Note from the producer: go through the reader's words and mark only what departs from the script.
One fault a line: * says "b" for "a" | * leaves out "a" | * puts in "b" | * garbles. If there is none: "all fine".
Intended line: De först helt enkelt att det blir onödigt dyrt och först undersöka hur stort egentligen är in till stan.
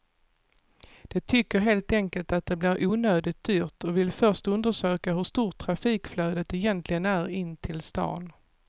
* says "tycker" for "först"
* puts in "vill"
* puts in "trafikflödet"